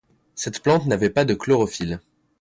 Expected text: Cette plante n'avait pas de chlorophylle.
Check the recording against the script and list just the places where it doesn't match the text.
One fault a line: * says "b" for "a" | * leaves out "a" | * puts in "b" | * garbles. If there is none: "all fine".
all fine